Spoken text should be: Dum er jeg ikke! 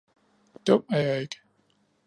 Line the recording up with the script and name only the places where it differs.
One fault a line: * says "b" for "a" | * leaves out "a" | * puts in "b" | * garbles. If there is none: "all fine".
all fine